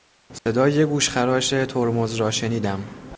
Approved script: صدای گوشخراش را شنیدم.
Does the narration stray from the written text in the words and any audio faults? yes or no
yes